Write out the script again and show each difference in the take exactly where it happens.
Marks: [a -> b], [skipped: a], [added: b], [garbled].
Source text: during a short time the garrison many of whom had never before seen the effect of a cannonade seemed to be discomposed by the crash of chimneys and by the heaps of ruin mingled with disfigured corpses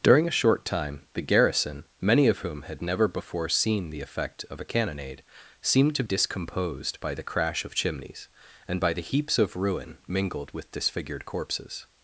during a short time the garrison many of whom had never before seen the effect of a cannonade seemed to [skipped: be] discomposed by the crash of chimneys and by the heaps of ruin mingled with disfigured corpses